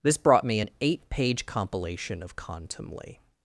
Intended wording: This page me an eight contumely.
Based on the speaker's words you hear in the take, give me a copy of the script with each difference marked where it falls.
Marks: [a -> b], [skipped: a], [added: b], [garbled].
This [page -> brought] me an eight [added: page compilation of] contumely.